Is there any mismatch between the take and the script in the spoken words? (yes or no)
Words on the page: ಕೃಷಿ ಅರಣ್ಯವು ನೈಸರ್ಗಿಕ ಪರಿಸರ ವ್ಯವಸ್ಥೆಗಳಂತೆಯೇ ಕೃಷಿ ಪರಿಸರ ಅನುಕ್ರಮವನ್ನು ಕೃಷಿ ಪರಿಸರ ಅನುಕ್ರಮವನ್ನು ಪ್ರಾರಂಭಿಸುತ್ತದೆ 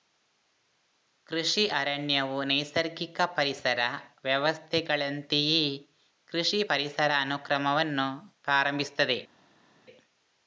yes